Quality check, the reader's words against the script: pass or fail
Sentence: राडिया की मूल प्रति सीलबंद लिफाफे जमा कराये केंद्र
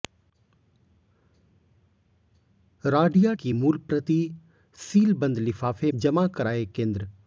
pass